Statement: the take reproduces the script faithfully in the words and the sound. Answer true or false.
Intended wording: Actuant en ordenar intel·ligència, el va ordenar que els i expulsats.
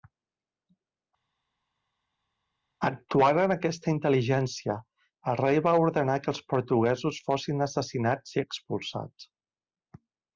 false